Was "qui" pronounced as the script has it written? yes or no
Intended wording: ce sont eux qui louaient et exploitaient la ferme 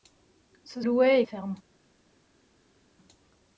no